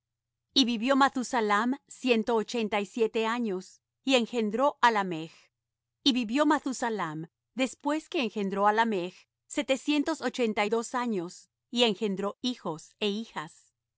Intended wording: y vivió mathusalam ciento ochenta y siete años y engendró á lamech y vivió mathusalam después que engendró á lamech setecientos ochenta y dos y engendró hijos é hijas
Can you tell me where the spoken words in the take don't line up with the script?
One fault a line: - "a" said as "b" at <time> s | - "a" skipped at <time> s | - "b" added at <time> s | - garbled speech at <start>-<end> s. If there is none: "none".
- "años" added at 10.9 s